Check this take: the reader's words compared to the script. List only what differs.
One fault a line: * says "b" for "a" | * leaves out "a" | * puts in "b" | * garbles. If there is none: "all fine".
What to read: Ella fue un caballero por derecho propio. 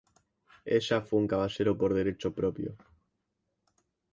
all fine